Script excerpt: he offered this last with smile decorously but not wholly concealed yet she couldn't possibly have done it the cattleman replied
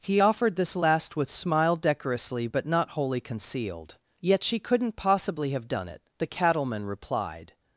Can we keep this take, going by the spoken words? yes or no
yes